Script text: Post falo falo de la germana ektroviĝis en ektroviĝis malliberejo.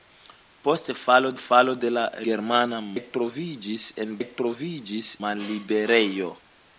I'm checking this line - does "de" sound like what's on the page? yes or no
yes